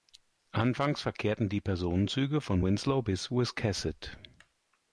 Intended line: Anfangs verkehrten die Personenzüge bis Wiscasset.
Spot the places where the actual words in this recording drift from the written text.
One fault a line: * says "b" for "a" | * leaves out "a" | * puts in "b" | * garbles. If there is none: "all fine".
* puts in "von Winslow"